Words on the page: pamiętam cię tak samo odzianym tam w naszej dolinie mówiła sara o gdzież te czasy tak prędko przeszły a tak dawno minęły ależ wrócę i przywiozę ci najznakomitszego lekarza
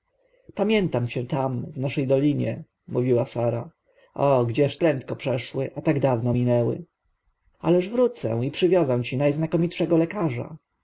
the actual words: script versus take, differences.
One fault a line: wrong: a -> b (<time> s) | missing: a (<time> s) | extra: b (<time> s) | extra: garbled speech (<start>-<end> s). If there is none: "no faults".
missing: tak samo odzianym (1.2 s)
missing: te czasy tak (4.8 s)